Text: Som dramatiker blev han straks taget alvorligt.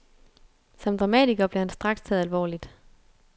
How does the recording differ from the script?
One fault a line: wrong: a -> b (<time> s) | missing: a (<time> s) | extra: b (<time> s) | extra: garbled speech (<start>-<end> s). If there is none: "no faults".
no faults